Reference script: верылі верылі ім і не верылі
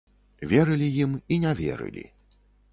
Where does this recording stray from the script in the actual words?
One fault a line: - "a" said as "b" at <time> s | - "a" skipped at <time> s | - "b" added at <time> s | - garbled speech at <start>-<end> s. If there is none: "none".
- "верылі" skipped at 0.9 s